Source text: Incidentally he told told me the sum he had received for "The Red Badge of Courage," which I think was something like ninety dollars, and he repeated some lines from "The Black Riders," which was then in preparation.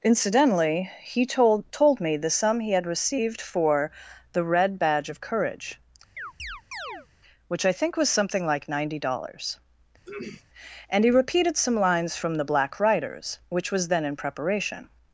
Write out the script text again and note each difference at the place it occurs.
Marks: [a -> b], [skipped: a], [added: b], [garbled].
Incidentally he told told me the sum he had received for "The Red Badge of Courage," which I think was something like ninety dollars, and he repeated some lines from "The Black Riders," which was then in preparation.